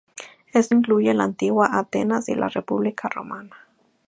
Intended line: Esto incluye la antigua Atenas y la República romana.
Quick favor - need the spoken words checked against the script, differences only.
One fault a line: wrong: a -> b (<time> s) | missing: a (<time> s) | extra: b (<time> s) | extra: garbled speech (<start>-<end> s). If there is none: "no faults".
no faults